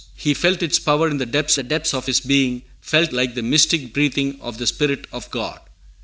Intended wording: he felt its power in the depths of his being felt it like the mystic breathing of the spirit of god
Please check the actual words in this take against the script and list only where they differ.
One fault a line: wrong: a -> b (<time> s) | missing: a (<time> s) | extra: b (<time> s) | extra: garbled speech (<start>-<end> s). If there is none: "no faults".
extra: the depths (1.5 s)
missing: it (3.1 s)